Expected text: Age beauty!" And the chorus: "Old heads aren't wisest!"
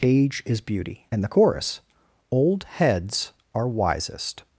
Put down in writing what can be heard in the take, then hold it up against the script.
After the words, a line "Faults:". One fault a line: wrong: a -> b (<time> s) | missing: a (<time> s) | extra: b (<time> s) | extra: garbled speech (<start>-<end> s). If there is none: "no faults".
Age is beauty!" And the chorus: "Old heads are wisest!"
Faults:
extra: is (0.5 s)
wrong: aren't -> are (3.5 s)